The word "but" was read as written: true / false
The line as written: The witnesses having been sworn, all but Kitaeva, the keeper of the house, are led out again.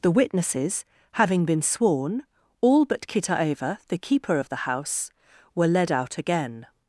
true